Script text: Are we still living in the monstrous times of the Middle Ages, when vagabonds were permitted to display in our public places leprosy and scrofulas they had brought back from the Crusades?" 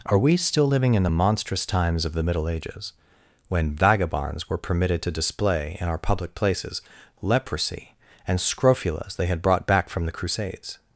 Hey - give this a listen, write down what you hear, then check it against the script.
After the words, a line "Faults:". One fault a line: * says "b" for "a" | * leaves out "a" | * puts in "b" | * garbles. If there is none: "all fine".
Are we still living in the monstrous times of the Middle Ages, when vagabonds were permitted to display in our public places leprosy and scrofulas they had brought back from the Crusades?"
Faults:
all fine